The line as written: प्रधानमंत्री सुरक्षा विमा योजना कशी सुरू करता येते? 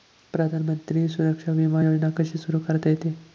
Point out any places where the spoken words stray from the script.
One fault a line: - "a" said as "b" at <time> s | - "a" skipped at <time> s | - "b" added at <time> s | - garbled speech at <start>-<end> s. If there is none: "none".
none